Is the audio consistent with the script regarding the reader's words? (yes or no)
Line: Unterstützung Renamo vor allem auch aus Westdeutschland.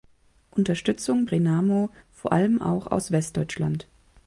yes